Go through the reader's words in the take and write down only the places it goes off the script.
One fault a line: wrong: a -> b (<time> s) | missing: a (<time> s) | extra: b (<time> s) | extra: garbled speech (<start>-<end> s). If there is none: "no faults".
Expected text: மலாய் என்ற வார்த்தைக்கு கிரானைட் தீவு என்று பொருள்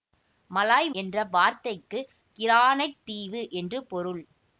no faults